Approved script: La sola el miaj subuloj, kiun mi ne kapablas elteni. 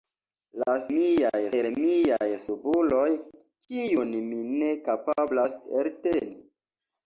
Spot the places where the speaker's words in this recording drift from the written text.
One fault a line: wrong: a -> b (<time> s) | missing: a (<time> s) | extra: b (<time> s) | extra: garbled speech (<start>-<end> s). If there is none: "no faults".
wrong: sola -> miaj (0.9 s)